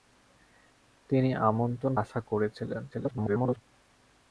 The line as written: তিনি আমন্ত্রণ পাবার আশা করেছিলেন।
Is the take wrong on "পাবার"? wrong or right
wrong